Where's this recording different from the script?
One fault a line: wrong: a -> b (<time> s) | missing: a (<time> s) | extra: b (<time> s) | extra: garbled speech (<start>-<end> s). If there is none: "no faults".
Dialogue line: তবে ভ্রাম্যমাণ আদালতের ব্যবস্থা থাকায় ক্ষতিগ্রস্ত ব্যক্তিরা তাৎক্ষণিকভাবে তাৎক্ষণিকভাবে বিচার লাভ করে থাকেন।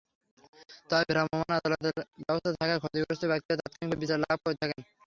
missing: তাৎক্ষণিকভাবে (4.0 s)